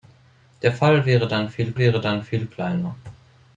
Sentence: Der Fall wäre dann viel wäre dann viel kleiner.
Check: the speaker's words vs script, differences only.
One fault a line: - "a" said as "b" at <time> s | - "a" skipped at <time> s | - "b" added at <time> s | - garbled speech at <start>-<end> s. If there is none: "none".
none